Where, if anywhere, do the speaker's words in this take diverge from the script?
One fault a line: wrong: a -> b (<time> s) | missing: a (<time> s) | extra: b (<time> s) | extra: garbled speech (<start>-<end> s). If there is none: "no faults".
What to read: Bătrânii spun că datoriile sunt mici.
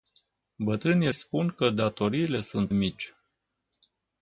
no faults